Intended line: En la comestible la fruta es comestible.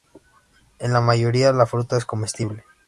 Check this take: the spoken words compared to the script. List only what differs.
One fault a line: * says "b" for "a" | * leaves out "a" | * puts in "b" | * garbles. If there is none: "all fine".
* says "mayoría" for "comestible"